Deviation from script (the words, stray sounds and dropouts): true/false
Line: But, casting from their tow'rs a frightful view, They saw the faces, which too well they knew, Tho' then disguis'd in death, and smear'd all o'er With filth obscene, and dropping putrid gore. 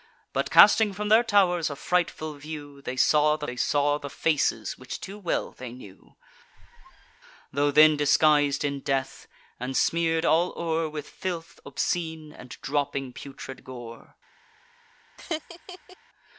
true